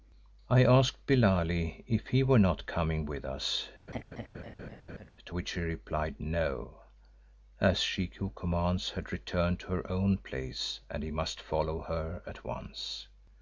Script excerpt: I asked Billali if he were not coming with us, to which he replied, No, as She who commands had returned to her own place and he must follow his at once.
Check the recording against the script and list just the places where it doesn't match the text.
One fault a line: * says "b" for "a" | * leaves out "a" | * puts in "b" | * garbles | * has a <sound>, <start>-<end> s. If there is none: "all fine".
* has a laugh, 3.9-5.1 s
* says "her" for "his"